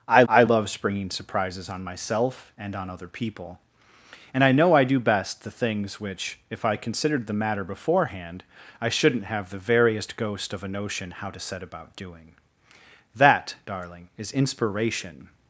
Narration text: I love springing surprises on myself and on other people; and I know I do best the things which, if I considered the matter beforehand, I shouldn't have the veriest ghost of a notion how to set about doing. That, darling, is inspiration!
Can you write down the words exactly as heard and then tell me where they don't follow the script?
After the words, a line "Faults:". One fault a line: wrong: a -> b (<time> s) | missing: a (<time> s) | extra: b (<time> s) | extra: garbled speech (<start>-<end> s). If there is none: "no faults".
I I love springing surprises on myself and on other people; and I know I do best the things which, if I considered the matter beforehand, I shouldn't have the veriest ghost of a notion how to set about doing. That, darling, is inspiration!
Faults:
extra: I (0.3 s)